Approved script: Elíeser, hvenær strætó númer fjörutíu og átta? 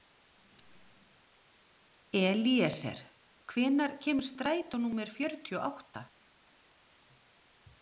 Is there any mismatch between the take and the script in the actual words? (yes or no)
yes